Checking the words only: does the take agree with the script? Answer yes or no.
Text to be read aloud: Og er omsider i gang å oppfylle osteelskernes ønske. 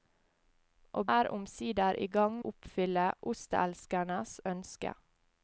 yes